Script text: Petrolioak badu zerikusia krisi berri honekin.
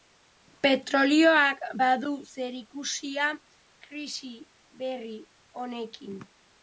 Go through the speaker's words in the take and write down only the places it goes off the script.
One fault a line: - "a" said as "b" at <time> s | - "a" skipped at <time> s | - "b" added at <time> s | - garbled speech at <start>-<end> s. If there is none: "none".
none